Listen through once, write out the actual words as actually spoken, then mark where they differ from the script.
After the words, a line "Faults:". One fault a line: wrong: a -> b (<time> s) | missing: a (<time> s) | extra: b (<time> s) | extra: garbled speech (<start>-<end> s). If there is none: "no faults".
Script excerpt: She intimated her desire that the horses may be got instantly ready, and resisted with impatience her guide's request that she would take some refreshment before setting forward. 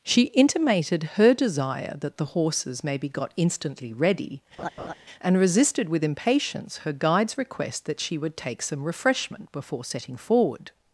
She intimated her desire that the horses may be got instantly ready, and resisted with impatience her guide's request that she would take some refreshment before setting forward.
Faults:
no faults